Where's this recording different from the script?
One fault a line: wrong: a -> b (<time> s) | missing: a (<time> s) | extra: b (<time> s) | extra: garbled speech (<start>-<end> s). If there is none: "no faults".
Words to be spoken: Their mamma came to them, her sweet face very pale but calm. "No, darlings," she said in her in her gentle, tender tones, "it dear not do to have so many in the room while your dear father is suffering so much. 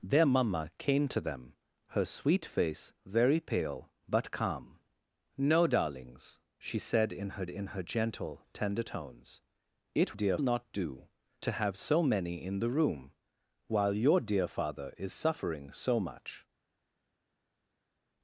no faults